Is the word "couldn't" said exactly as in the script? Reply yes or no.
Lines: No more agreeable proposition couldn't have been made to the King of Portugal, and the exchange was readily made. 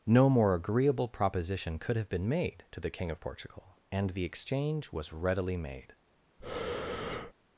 no